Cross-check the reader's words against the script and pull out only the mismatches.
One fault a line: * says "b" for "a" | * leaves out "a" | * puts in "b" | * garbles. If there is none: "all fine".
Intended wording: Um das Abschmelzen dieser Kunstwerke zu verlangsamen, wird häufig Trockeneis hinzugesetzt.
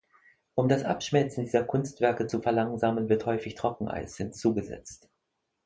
all fine